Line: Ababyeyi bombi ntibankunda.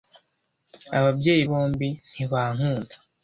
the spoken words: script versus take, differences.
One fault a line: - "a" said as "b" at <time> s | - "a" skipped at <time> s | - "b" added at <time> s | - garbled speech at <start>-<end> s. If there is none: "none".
none